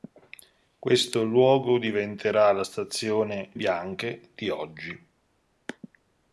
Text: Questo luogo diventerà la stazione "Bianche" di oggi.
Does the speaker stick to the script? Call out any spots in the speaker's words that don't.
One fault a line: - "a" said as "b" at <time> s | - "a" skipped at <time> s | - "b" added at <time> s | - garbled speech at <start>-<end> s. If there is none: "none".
none